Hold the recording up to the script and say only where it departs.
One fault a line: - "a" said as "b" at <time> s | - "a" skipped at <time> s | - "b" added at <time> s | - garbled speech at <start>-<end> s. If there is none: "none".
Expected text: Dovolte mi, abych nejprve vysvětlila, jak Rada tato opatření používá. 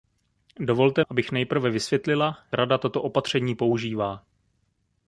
- "mi" skipped at 1.0 s
- "jak" skipped at 2.4 s